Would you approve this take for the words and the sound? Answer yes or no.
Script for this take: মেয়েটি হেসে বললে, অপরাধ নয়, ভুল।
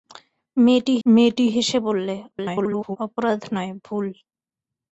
no